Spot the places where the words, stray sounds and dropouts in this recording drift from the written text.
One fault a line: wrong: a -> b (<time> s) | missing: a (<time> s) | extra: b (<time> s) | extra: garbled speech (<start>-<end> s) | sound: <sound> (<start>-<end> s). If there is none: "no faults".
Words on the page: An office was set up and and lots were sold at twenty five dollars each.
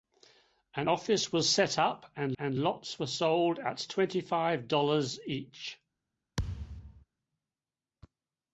sound: thud (6.4-7.0 s)